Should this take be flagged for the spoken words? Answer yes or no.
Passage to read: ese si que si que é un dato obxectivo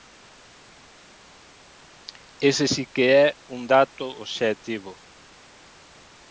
yes